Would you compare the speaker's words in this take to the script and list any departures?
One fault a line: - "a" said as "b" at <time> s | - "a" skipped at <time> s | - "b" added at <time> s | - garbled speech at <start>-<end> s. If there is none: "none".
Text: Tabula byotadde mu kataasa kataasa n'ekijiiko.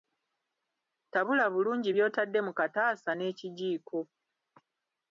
- "bulungi" added at 1.5 s
- "kataasa" skipped at 3.1 s